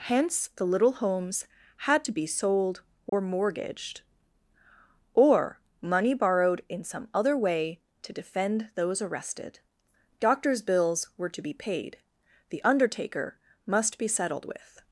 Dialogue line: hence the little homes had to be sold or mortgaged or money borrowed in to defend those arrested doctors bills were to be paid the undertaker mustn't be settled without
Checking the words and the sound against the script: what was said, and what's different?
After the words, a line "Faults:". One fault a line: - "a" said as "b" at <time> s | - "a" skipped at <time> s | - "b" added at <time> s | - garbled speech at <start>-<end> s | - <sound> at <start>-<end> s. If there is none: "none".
hence the little homes had to be sold or mortgaged or money borrowed in some other way to defend those arrested doctors bills were to be paid the undertaker must be settled with
Faults:
- dropout at 3.1-3.1 s
- "some other way" added at 6.8 s
- "mustn't" said as "must" at 13.7 s
- "without" said as "with" at 14.5 s